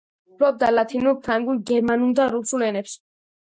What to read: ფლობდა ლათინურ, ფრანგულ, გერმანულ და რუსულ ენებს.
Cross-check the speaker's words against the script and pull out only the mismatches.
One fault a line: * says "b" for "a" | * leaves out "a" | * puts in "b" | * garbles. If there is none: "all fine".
all fine